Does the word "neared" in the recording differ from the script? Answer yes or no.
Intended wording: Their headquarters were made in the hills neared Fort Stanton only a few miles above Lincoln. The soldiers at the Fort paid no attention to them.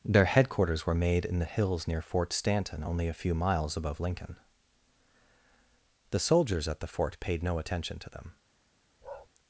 yes